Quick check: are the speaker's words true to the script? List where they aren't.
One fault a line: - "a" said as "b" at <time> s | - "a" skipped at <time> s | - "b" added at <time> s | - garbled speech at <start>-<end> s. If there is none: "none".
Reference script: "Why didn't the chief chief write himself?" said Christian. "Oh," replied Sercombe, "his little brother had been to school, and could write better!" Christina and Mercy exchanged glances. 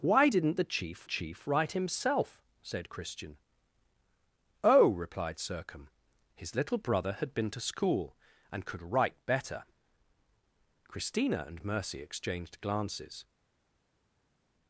none